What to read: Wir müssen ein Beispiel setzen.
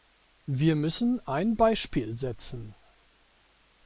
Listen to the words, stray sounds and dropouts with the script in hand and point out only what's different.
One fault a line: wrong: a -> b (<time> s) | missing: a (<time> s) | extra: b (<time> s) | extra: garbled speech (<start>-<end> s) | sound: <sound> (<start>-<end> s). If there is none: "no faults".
no faults